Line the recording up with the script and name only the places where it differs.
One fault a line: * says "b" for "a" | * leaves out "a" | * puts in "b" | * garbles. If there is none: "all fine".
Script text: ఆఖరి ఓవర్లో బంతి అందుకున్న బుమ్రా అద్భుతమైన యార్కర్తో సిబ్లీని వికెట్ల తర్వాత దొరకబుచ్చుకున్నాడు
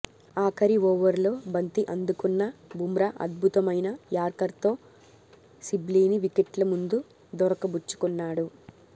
* says "ముందు" for "తర్వాత"